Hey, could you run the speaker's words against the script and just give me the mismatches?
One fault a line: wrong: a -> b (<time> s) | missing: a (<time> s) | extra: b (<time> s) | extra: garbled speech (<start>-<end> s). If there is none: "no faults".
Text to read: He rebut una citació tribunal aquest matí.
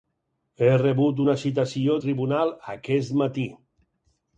no faults